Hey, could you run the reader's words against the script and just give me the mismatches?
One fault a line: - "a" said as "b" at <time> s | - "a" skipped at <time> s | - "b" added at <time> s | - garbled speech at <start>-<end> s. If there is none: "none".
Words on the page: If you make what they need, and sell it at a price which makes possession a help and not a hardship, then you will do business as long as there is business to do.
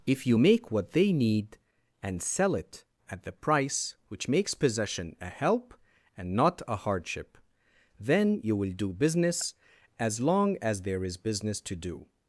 - "a" said as "the" at 3.2 s